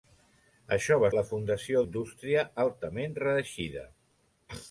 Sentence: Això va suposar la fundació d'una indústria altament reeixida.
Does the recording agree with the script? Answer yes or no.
no